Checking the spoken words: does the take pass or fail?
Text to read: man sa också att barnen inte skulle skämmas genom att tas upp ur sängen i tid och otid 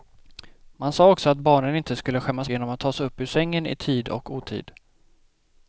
pass